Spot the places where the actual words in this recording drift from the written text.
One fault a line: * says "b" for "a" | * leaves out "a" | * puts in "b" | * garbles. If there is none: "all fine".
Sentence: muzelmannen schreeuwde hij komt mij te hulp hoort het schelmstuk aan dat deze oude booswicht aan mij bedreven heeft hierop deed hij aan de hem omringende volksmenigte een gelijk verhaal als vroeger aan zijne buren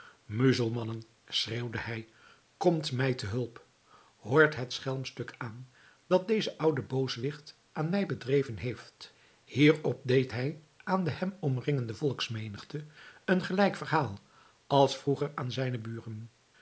all fine